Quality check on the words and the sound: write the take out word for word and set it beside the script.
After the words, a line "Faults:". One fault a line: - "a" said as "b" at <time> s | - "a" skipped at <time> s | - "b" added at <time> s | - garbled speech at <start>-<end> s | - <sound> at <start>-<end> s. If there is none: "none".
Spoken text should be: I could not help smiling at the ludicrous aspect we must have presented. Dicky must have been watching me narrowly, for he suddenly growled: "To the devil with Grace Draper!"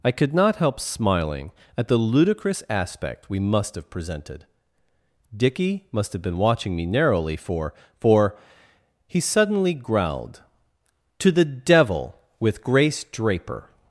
I could not help smiling at the ludicrous aspect we must have presented. Dicky must have been watching me narrowly, for for he suddenly growled: "To the devil with Grace Draper!"
Faults:
- "for" added at 8.0 s